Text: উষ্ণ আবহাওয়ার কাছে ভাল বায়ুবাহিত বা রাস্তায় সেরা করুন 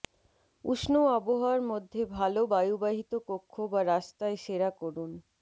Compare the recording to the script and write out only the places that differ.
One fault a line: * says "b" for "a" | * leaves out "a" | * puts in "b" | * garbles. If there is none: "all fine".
* says "মধ্যে" for "কাছে"
* puts in "কক্ষ"